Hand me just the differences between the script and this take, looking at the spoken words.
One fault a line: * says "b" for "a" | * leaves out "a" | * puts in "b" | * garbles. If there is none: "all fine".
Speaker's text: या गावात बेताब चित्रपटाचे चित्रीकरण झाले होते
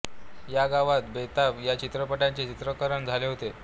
* puts in "या"